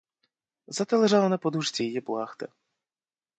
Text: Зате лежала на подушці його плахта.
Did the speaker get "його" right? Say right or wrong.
wrong